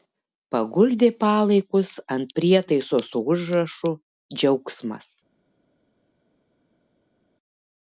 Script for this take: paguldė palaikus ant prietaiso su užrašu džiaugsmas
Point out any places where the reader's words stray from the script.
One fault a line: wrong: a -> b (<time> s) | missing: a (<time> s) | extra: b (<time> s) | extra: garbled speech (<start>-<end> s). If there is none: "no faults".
no faults